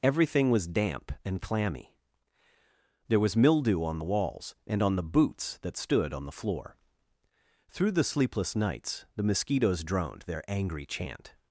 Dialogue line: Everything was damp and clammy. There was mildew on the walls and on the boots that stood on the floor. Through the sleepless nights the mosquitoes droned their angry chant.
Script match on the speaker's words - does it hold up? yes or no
yes